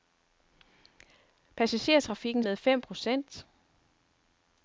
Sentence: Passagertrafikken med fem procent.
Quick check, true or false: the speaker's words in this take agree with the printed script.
true